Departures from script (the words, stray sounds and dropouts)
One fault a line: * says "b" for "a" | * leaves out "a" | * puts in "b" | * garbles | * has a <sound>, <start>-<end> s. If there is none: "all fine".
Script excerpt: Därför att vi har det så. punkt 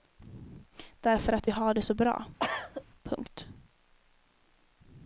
* puts in "bra"
* has a cough, 2.4-2.8 s